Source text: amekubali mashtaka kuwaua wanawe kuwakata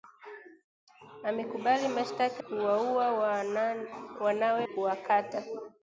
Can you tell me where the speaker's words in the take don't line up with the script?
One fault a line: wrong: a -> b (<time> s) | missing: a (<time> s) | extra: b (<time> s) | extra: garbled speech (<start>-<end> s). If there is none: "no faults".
no faults